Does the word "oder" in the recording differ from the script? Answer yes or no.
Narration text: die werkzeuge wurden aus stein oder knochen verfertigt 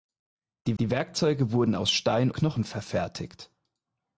yes